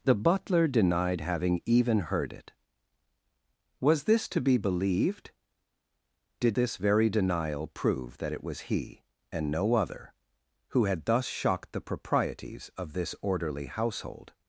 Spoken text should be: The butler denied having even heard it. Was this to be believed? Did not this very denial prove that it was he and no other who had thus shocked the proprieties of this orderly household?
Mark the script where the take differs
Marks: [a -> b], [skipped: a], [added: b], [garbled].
The butler denied having even heard it. Was this to be believed? Did [skipped: not] this very denial prove that it was he and no other who had thus shocked the proprieties of this orderly household?